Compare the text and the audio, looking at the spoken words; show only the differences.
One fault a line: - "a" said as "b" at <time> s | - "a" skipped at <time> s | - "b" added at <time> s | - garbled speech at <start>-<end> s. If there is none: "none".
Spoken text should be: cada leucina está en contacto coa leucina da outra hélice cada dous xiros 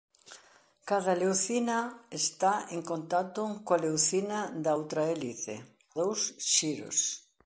- "cada" skipped at 5.5 s